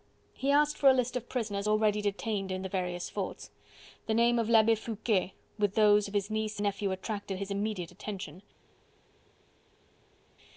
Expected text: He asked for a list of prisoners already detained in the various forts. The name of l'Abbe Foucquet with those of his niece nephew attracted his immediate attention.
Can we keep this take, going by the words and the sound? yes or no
yes